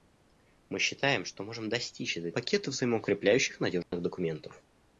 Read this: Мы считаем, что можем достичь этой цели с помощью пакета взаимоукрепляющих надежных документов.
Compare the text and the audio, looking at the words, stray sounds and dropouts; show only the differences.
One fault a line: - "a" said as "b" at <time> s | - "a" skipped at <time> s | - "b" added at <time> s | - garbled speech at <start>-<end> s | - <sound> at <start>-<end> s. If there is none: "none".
- "цели с помощью" skipped at 2.3 s
- dropout at 3.8-3.9 s